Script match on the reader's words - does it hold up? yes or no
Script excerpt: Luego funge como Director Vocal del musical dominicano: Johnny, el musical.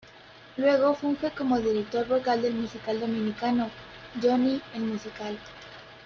yes